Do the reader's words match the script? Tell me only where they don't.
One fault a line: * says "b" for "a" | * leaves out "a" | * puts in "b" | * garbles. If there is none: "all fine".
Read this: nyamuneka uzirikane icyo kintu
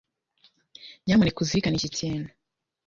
* says "iki" for "icyo"